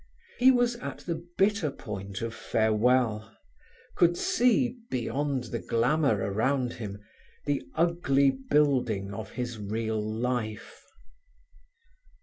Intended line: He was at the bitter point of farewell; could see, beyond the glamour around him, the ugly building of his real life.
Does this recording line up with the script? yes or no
yes